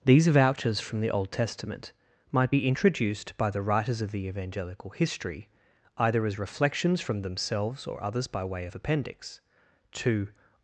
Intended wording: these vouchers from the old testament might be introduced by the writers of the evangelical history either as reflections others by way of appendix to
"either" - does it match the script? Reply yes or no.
yes